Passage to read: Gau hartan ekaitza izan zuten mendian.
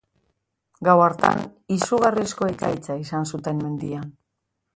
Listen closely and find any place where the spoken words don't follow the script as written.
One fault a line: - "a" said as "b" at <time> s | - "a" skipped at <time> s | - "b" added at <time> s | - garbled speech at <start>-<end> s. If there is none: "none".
- "izugarrizko" added at 1.8 s